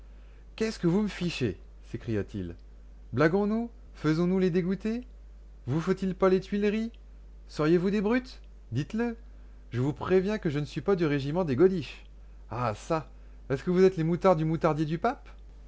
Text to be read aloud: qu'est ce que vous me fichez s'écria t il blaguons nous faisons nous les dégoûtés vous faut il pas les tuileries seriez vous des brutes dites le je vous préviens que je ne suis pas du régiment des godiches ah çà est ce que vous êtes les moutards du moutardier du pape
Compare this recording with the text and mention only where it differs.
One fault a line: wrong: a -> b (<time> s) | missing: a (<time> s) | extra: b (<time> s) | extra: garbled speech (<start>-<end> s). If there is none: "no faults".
no faults